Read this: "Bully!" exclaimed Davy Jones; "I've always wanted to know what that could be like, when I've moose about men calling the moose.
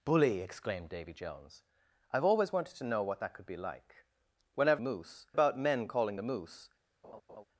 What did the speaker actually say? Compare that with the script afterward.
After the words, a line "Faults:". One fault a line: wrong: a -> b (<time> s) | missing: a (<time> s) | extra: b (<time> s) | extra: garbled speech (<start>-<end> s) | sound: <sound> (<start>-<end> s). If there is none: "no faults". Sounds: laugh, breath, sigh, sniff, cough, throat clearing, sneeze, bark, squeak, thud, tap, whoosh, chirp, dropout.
"Bully!" exclaimed Davy Jones; "I've always wanted to know what that could be like, when I've moose about men calling the moose.
Faults:
sound: laugh (7.0-7.4 s)